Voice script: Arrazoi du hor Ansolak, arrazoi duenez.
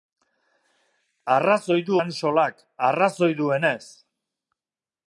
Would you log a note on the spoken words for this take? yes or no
yes